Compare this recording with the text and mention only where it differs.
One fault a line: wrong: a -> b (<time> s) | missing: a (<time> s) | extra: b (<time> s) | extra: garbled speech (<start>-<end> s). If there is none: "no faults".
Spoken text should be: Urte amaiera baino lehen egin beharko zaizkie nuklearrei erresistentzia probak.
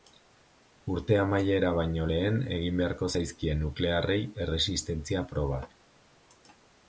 no faults